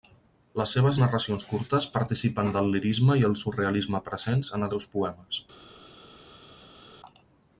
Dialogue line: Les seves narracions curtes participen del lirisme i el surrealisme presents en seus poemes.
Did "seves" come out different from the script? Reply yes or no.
no